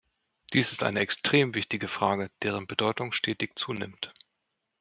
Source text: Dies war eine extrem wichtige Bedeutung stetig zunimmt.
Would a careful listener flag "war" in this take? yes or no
yes